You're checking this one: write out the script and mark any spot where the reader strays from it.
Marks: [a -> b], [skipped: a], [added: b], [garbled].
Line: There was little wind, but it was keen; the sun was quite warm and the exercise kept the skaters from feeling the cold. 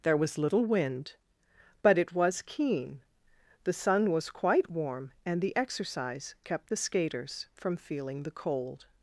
There was little wind, but it was keen; the sun was quite warm and the exercise kept the skaters from feeling the cold.